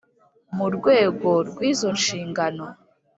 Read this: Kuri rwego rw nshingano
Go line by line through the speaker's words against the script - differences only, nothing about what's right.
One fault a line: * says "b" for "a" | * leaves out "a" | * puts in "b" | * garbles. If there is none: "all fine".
* says "Mu" for "Kuri"
* puts in "izo"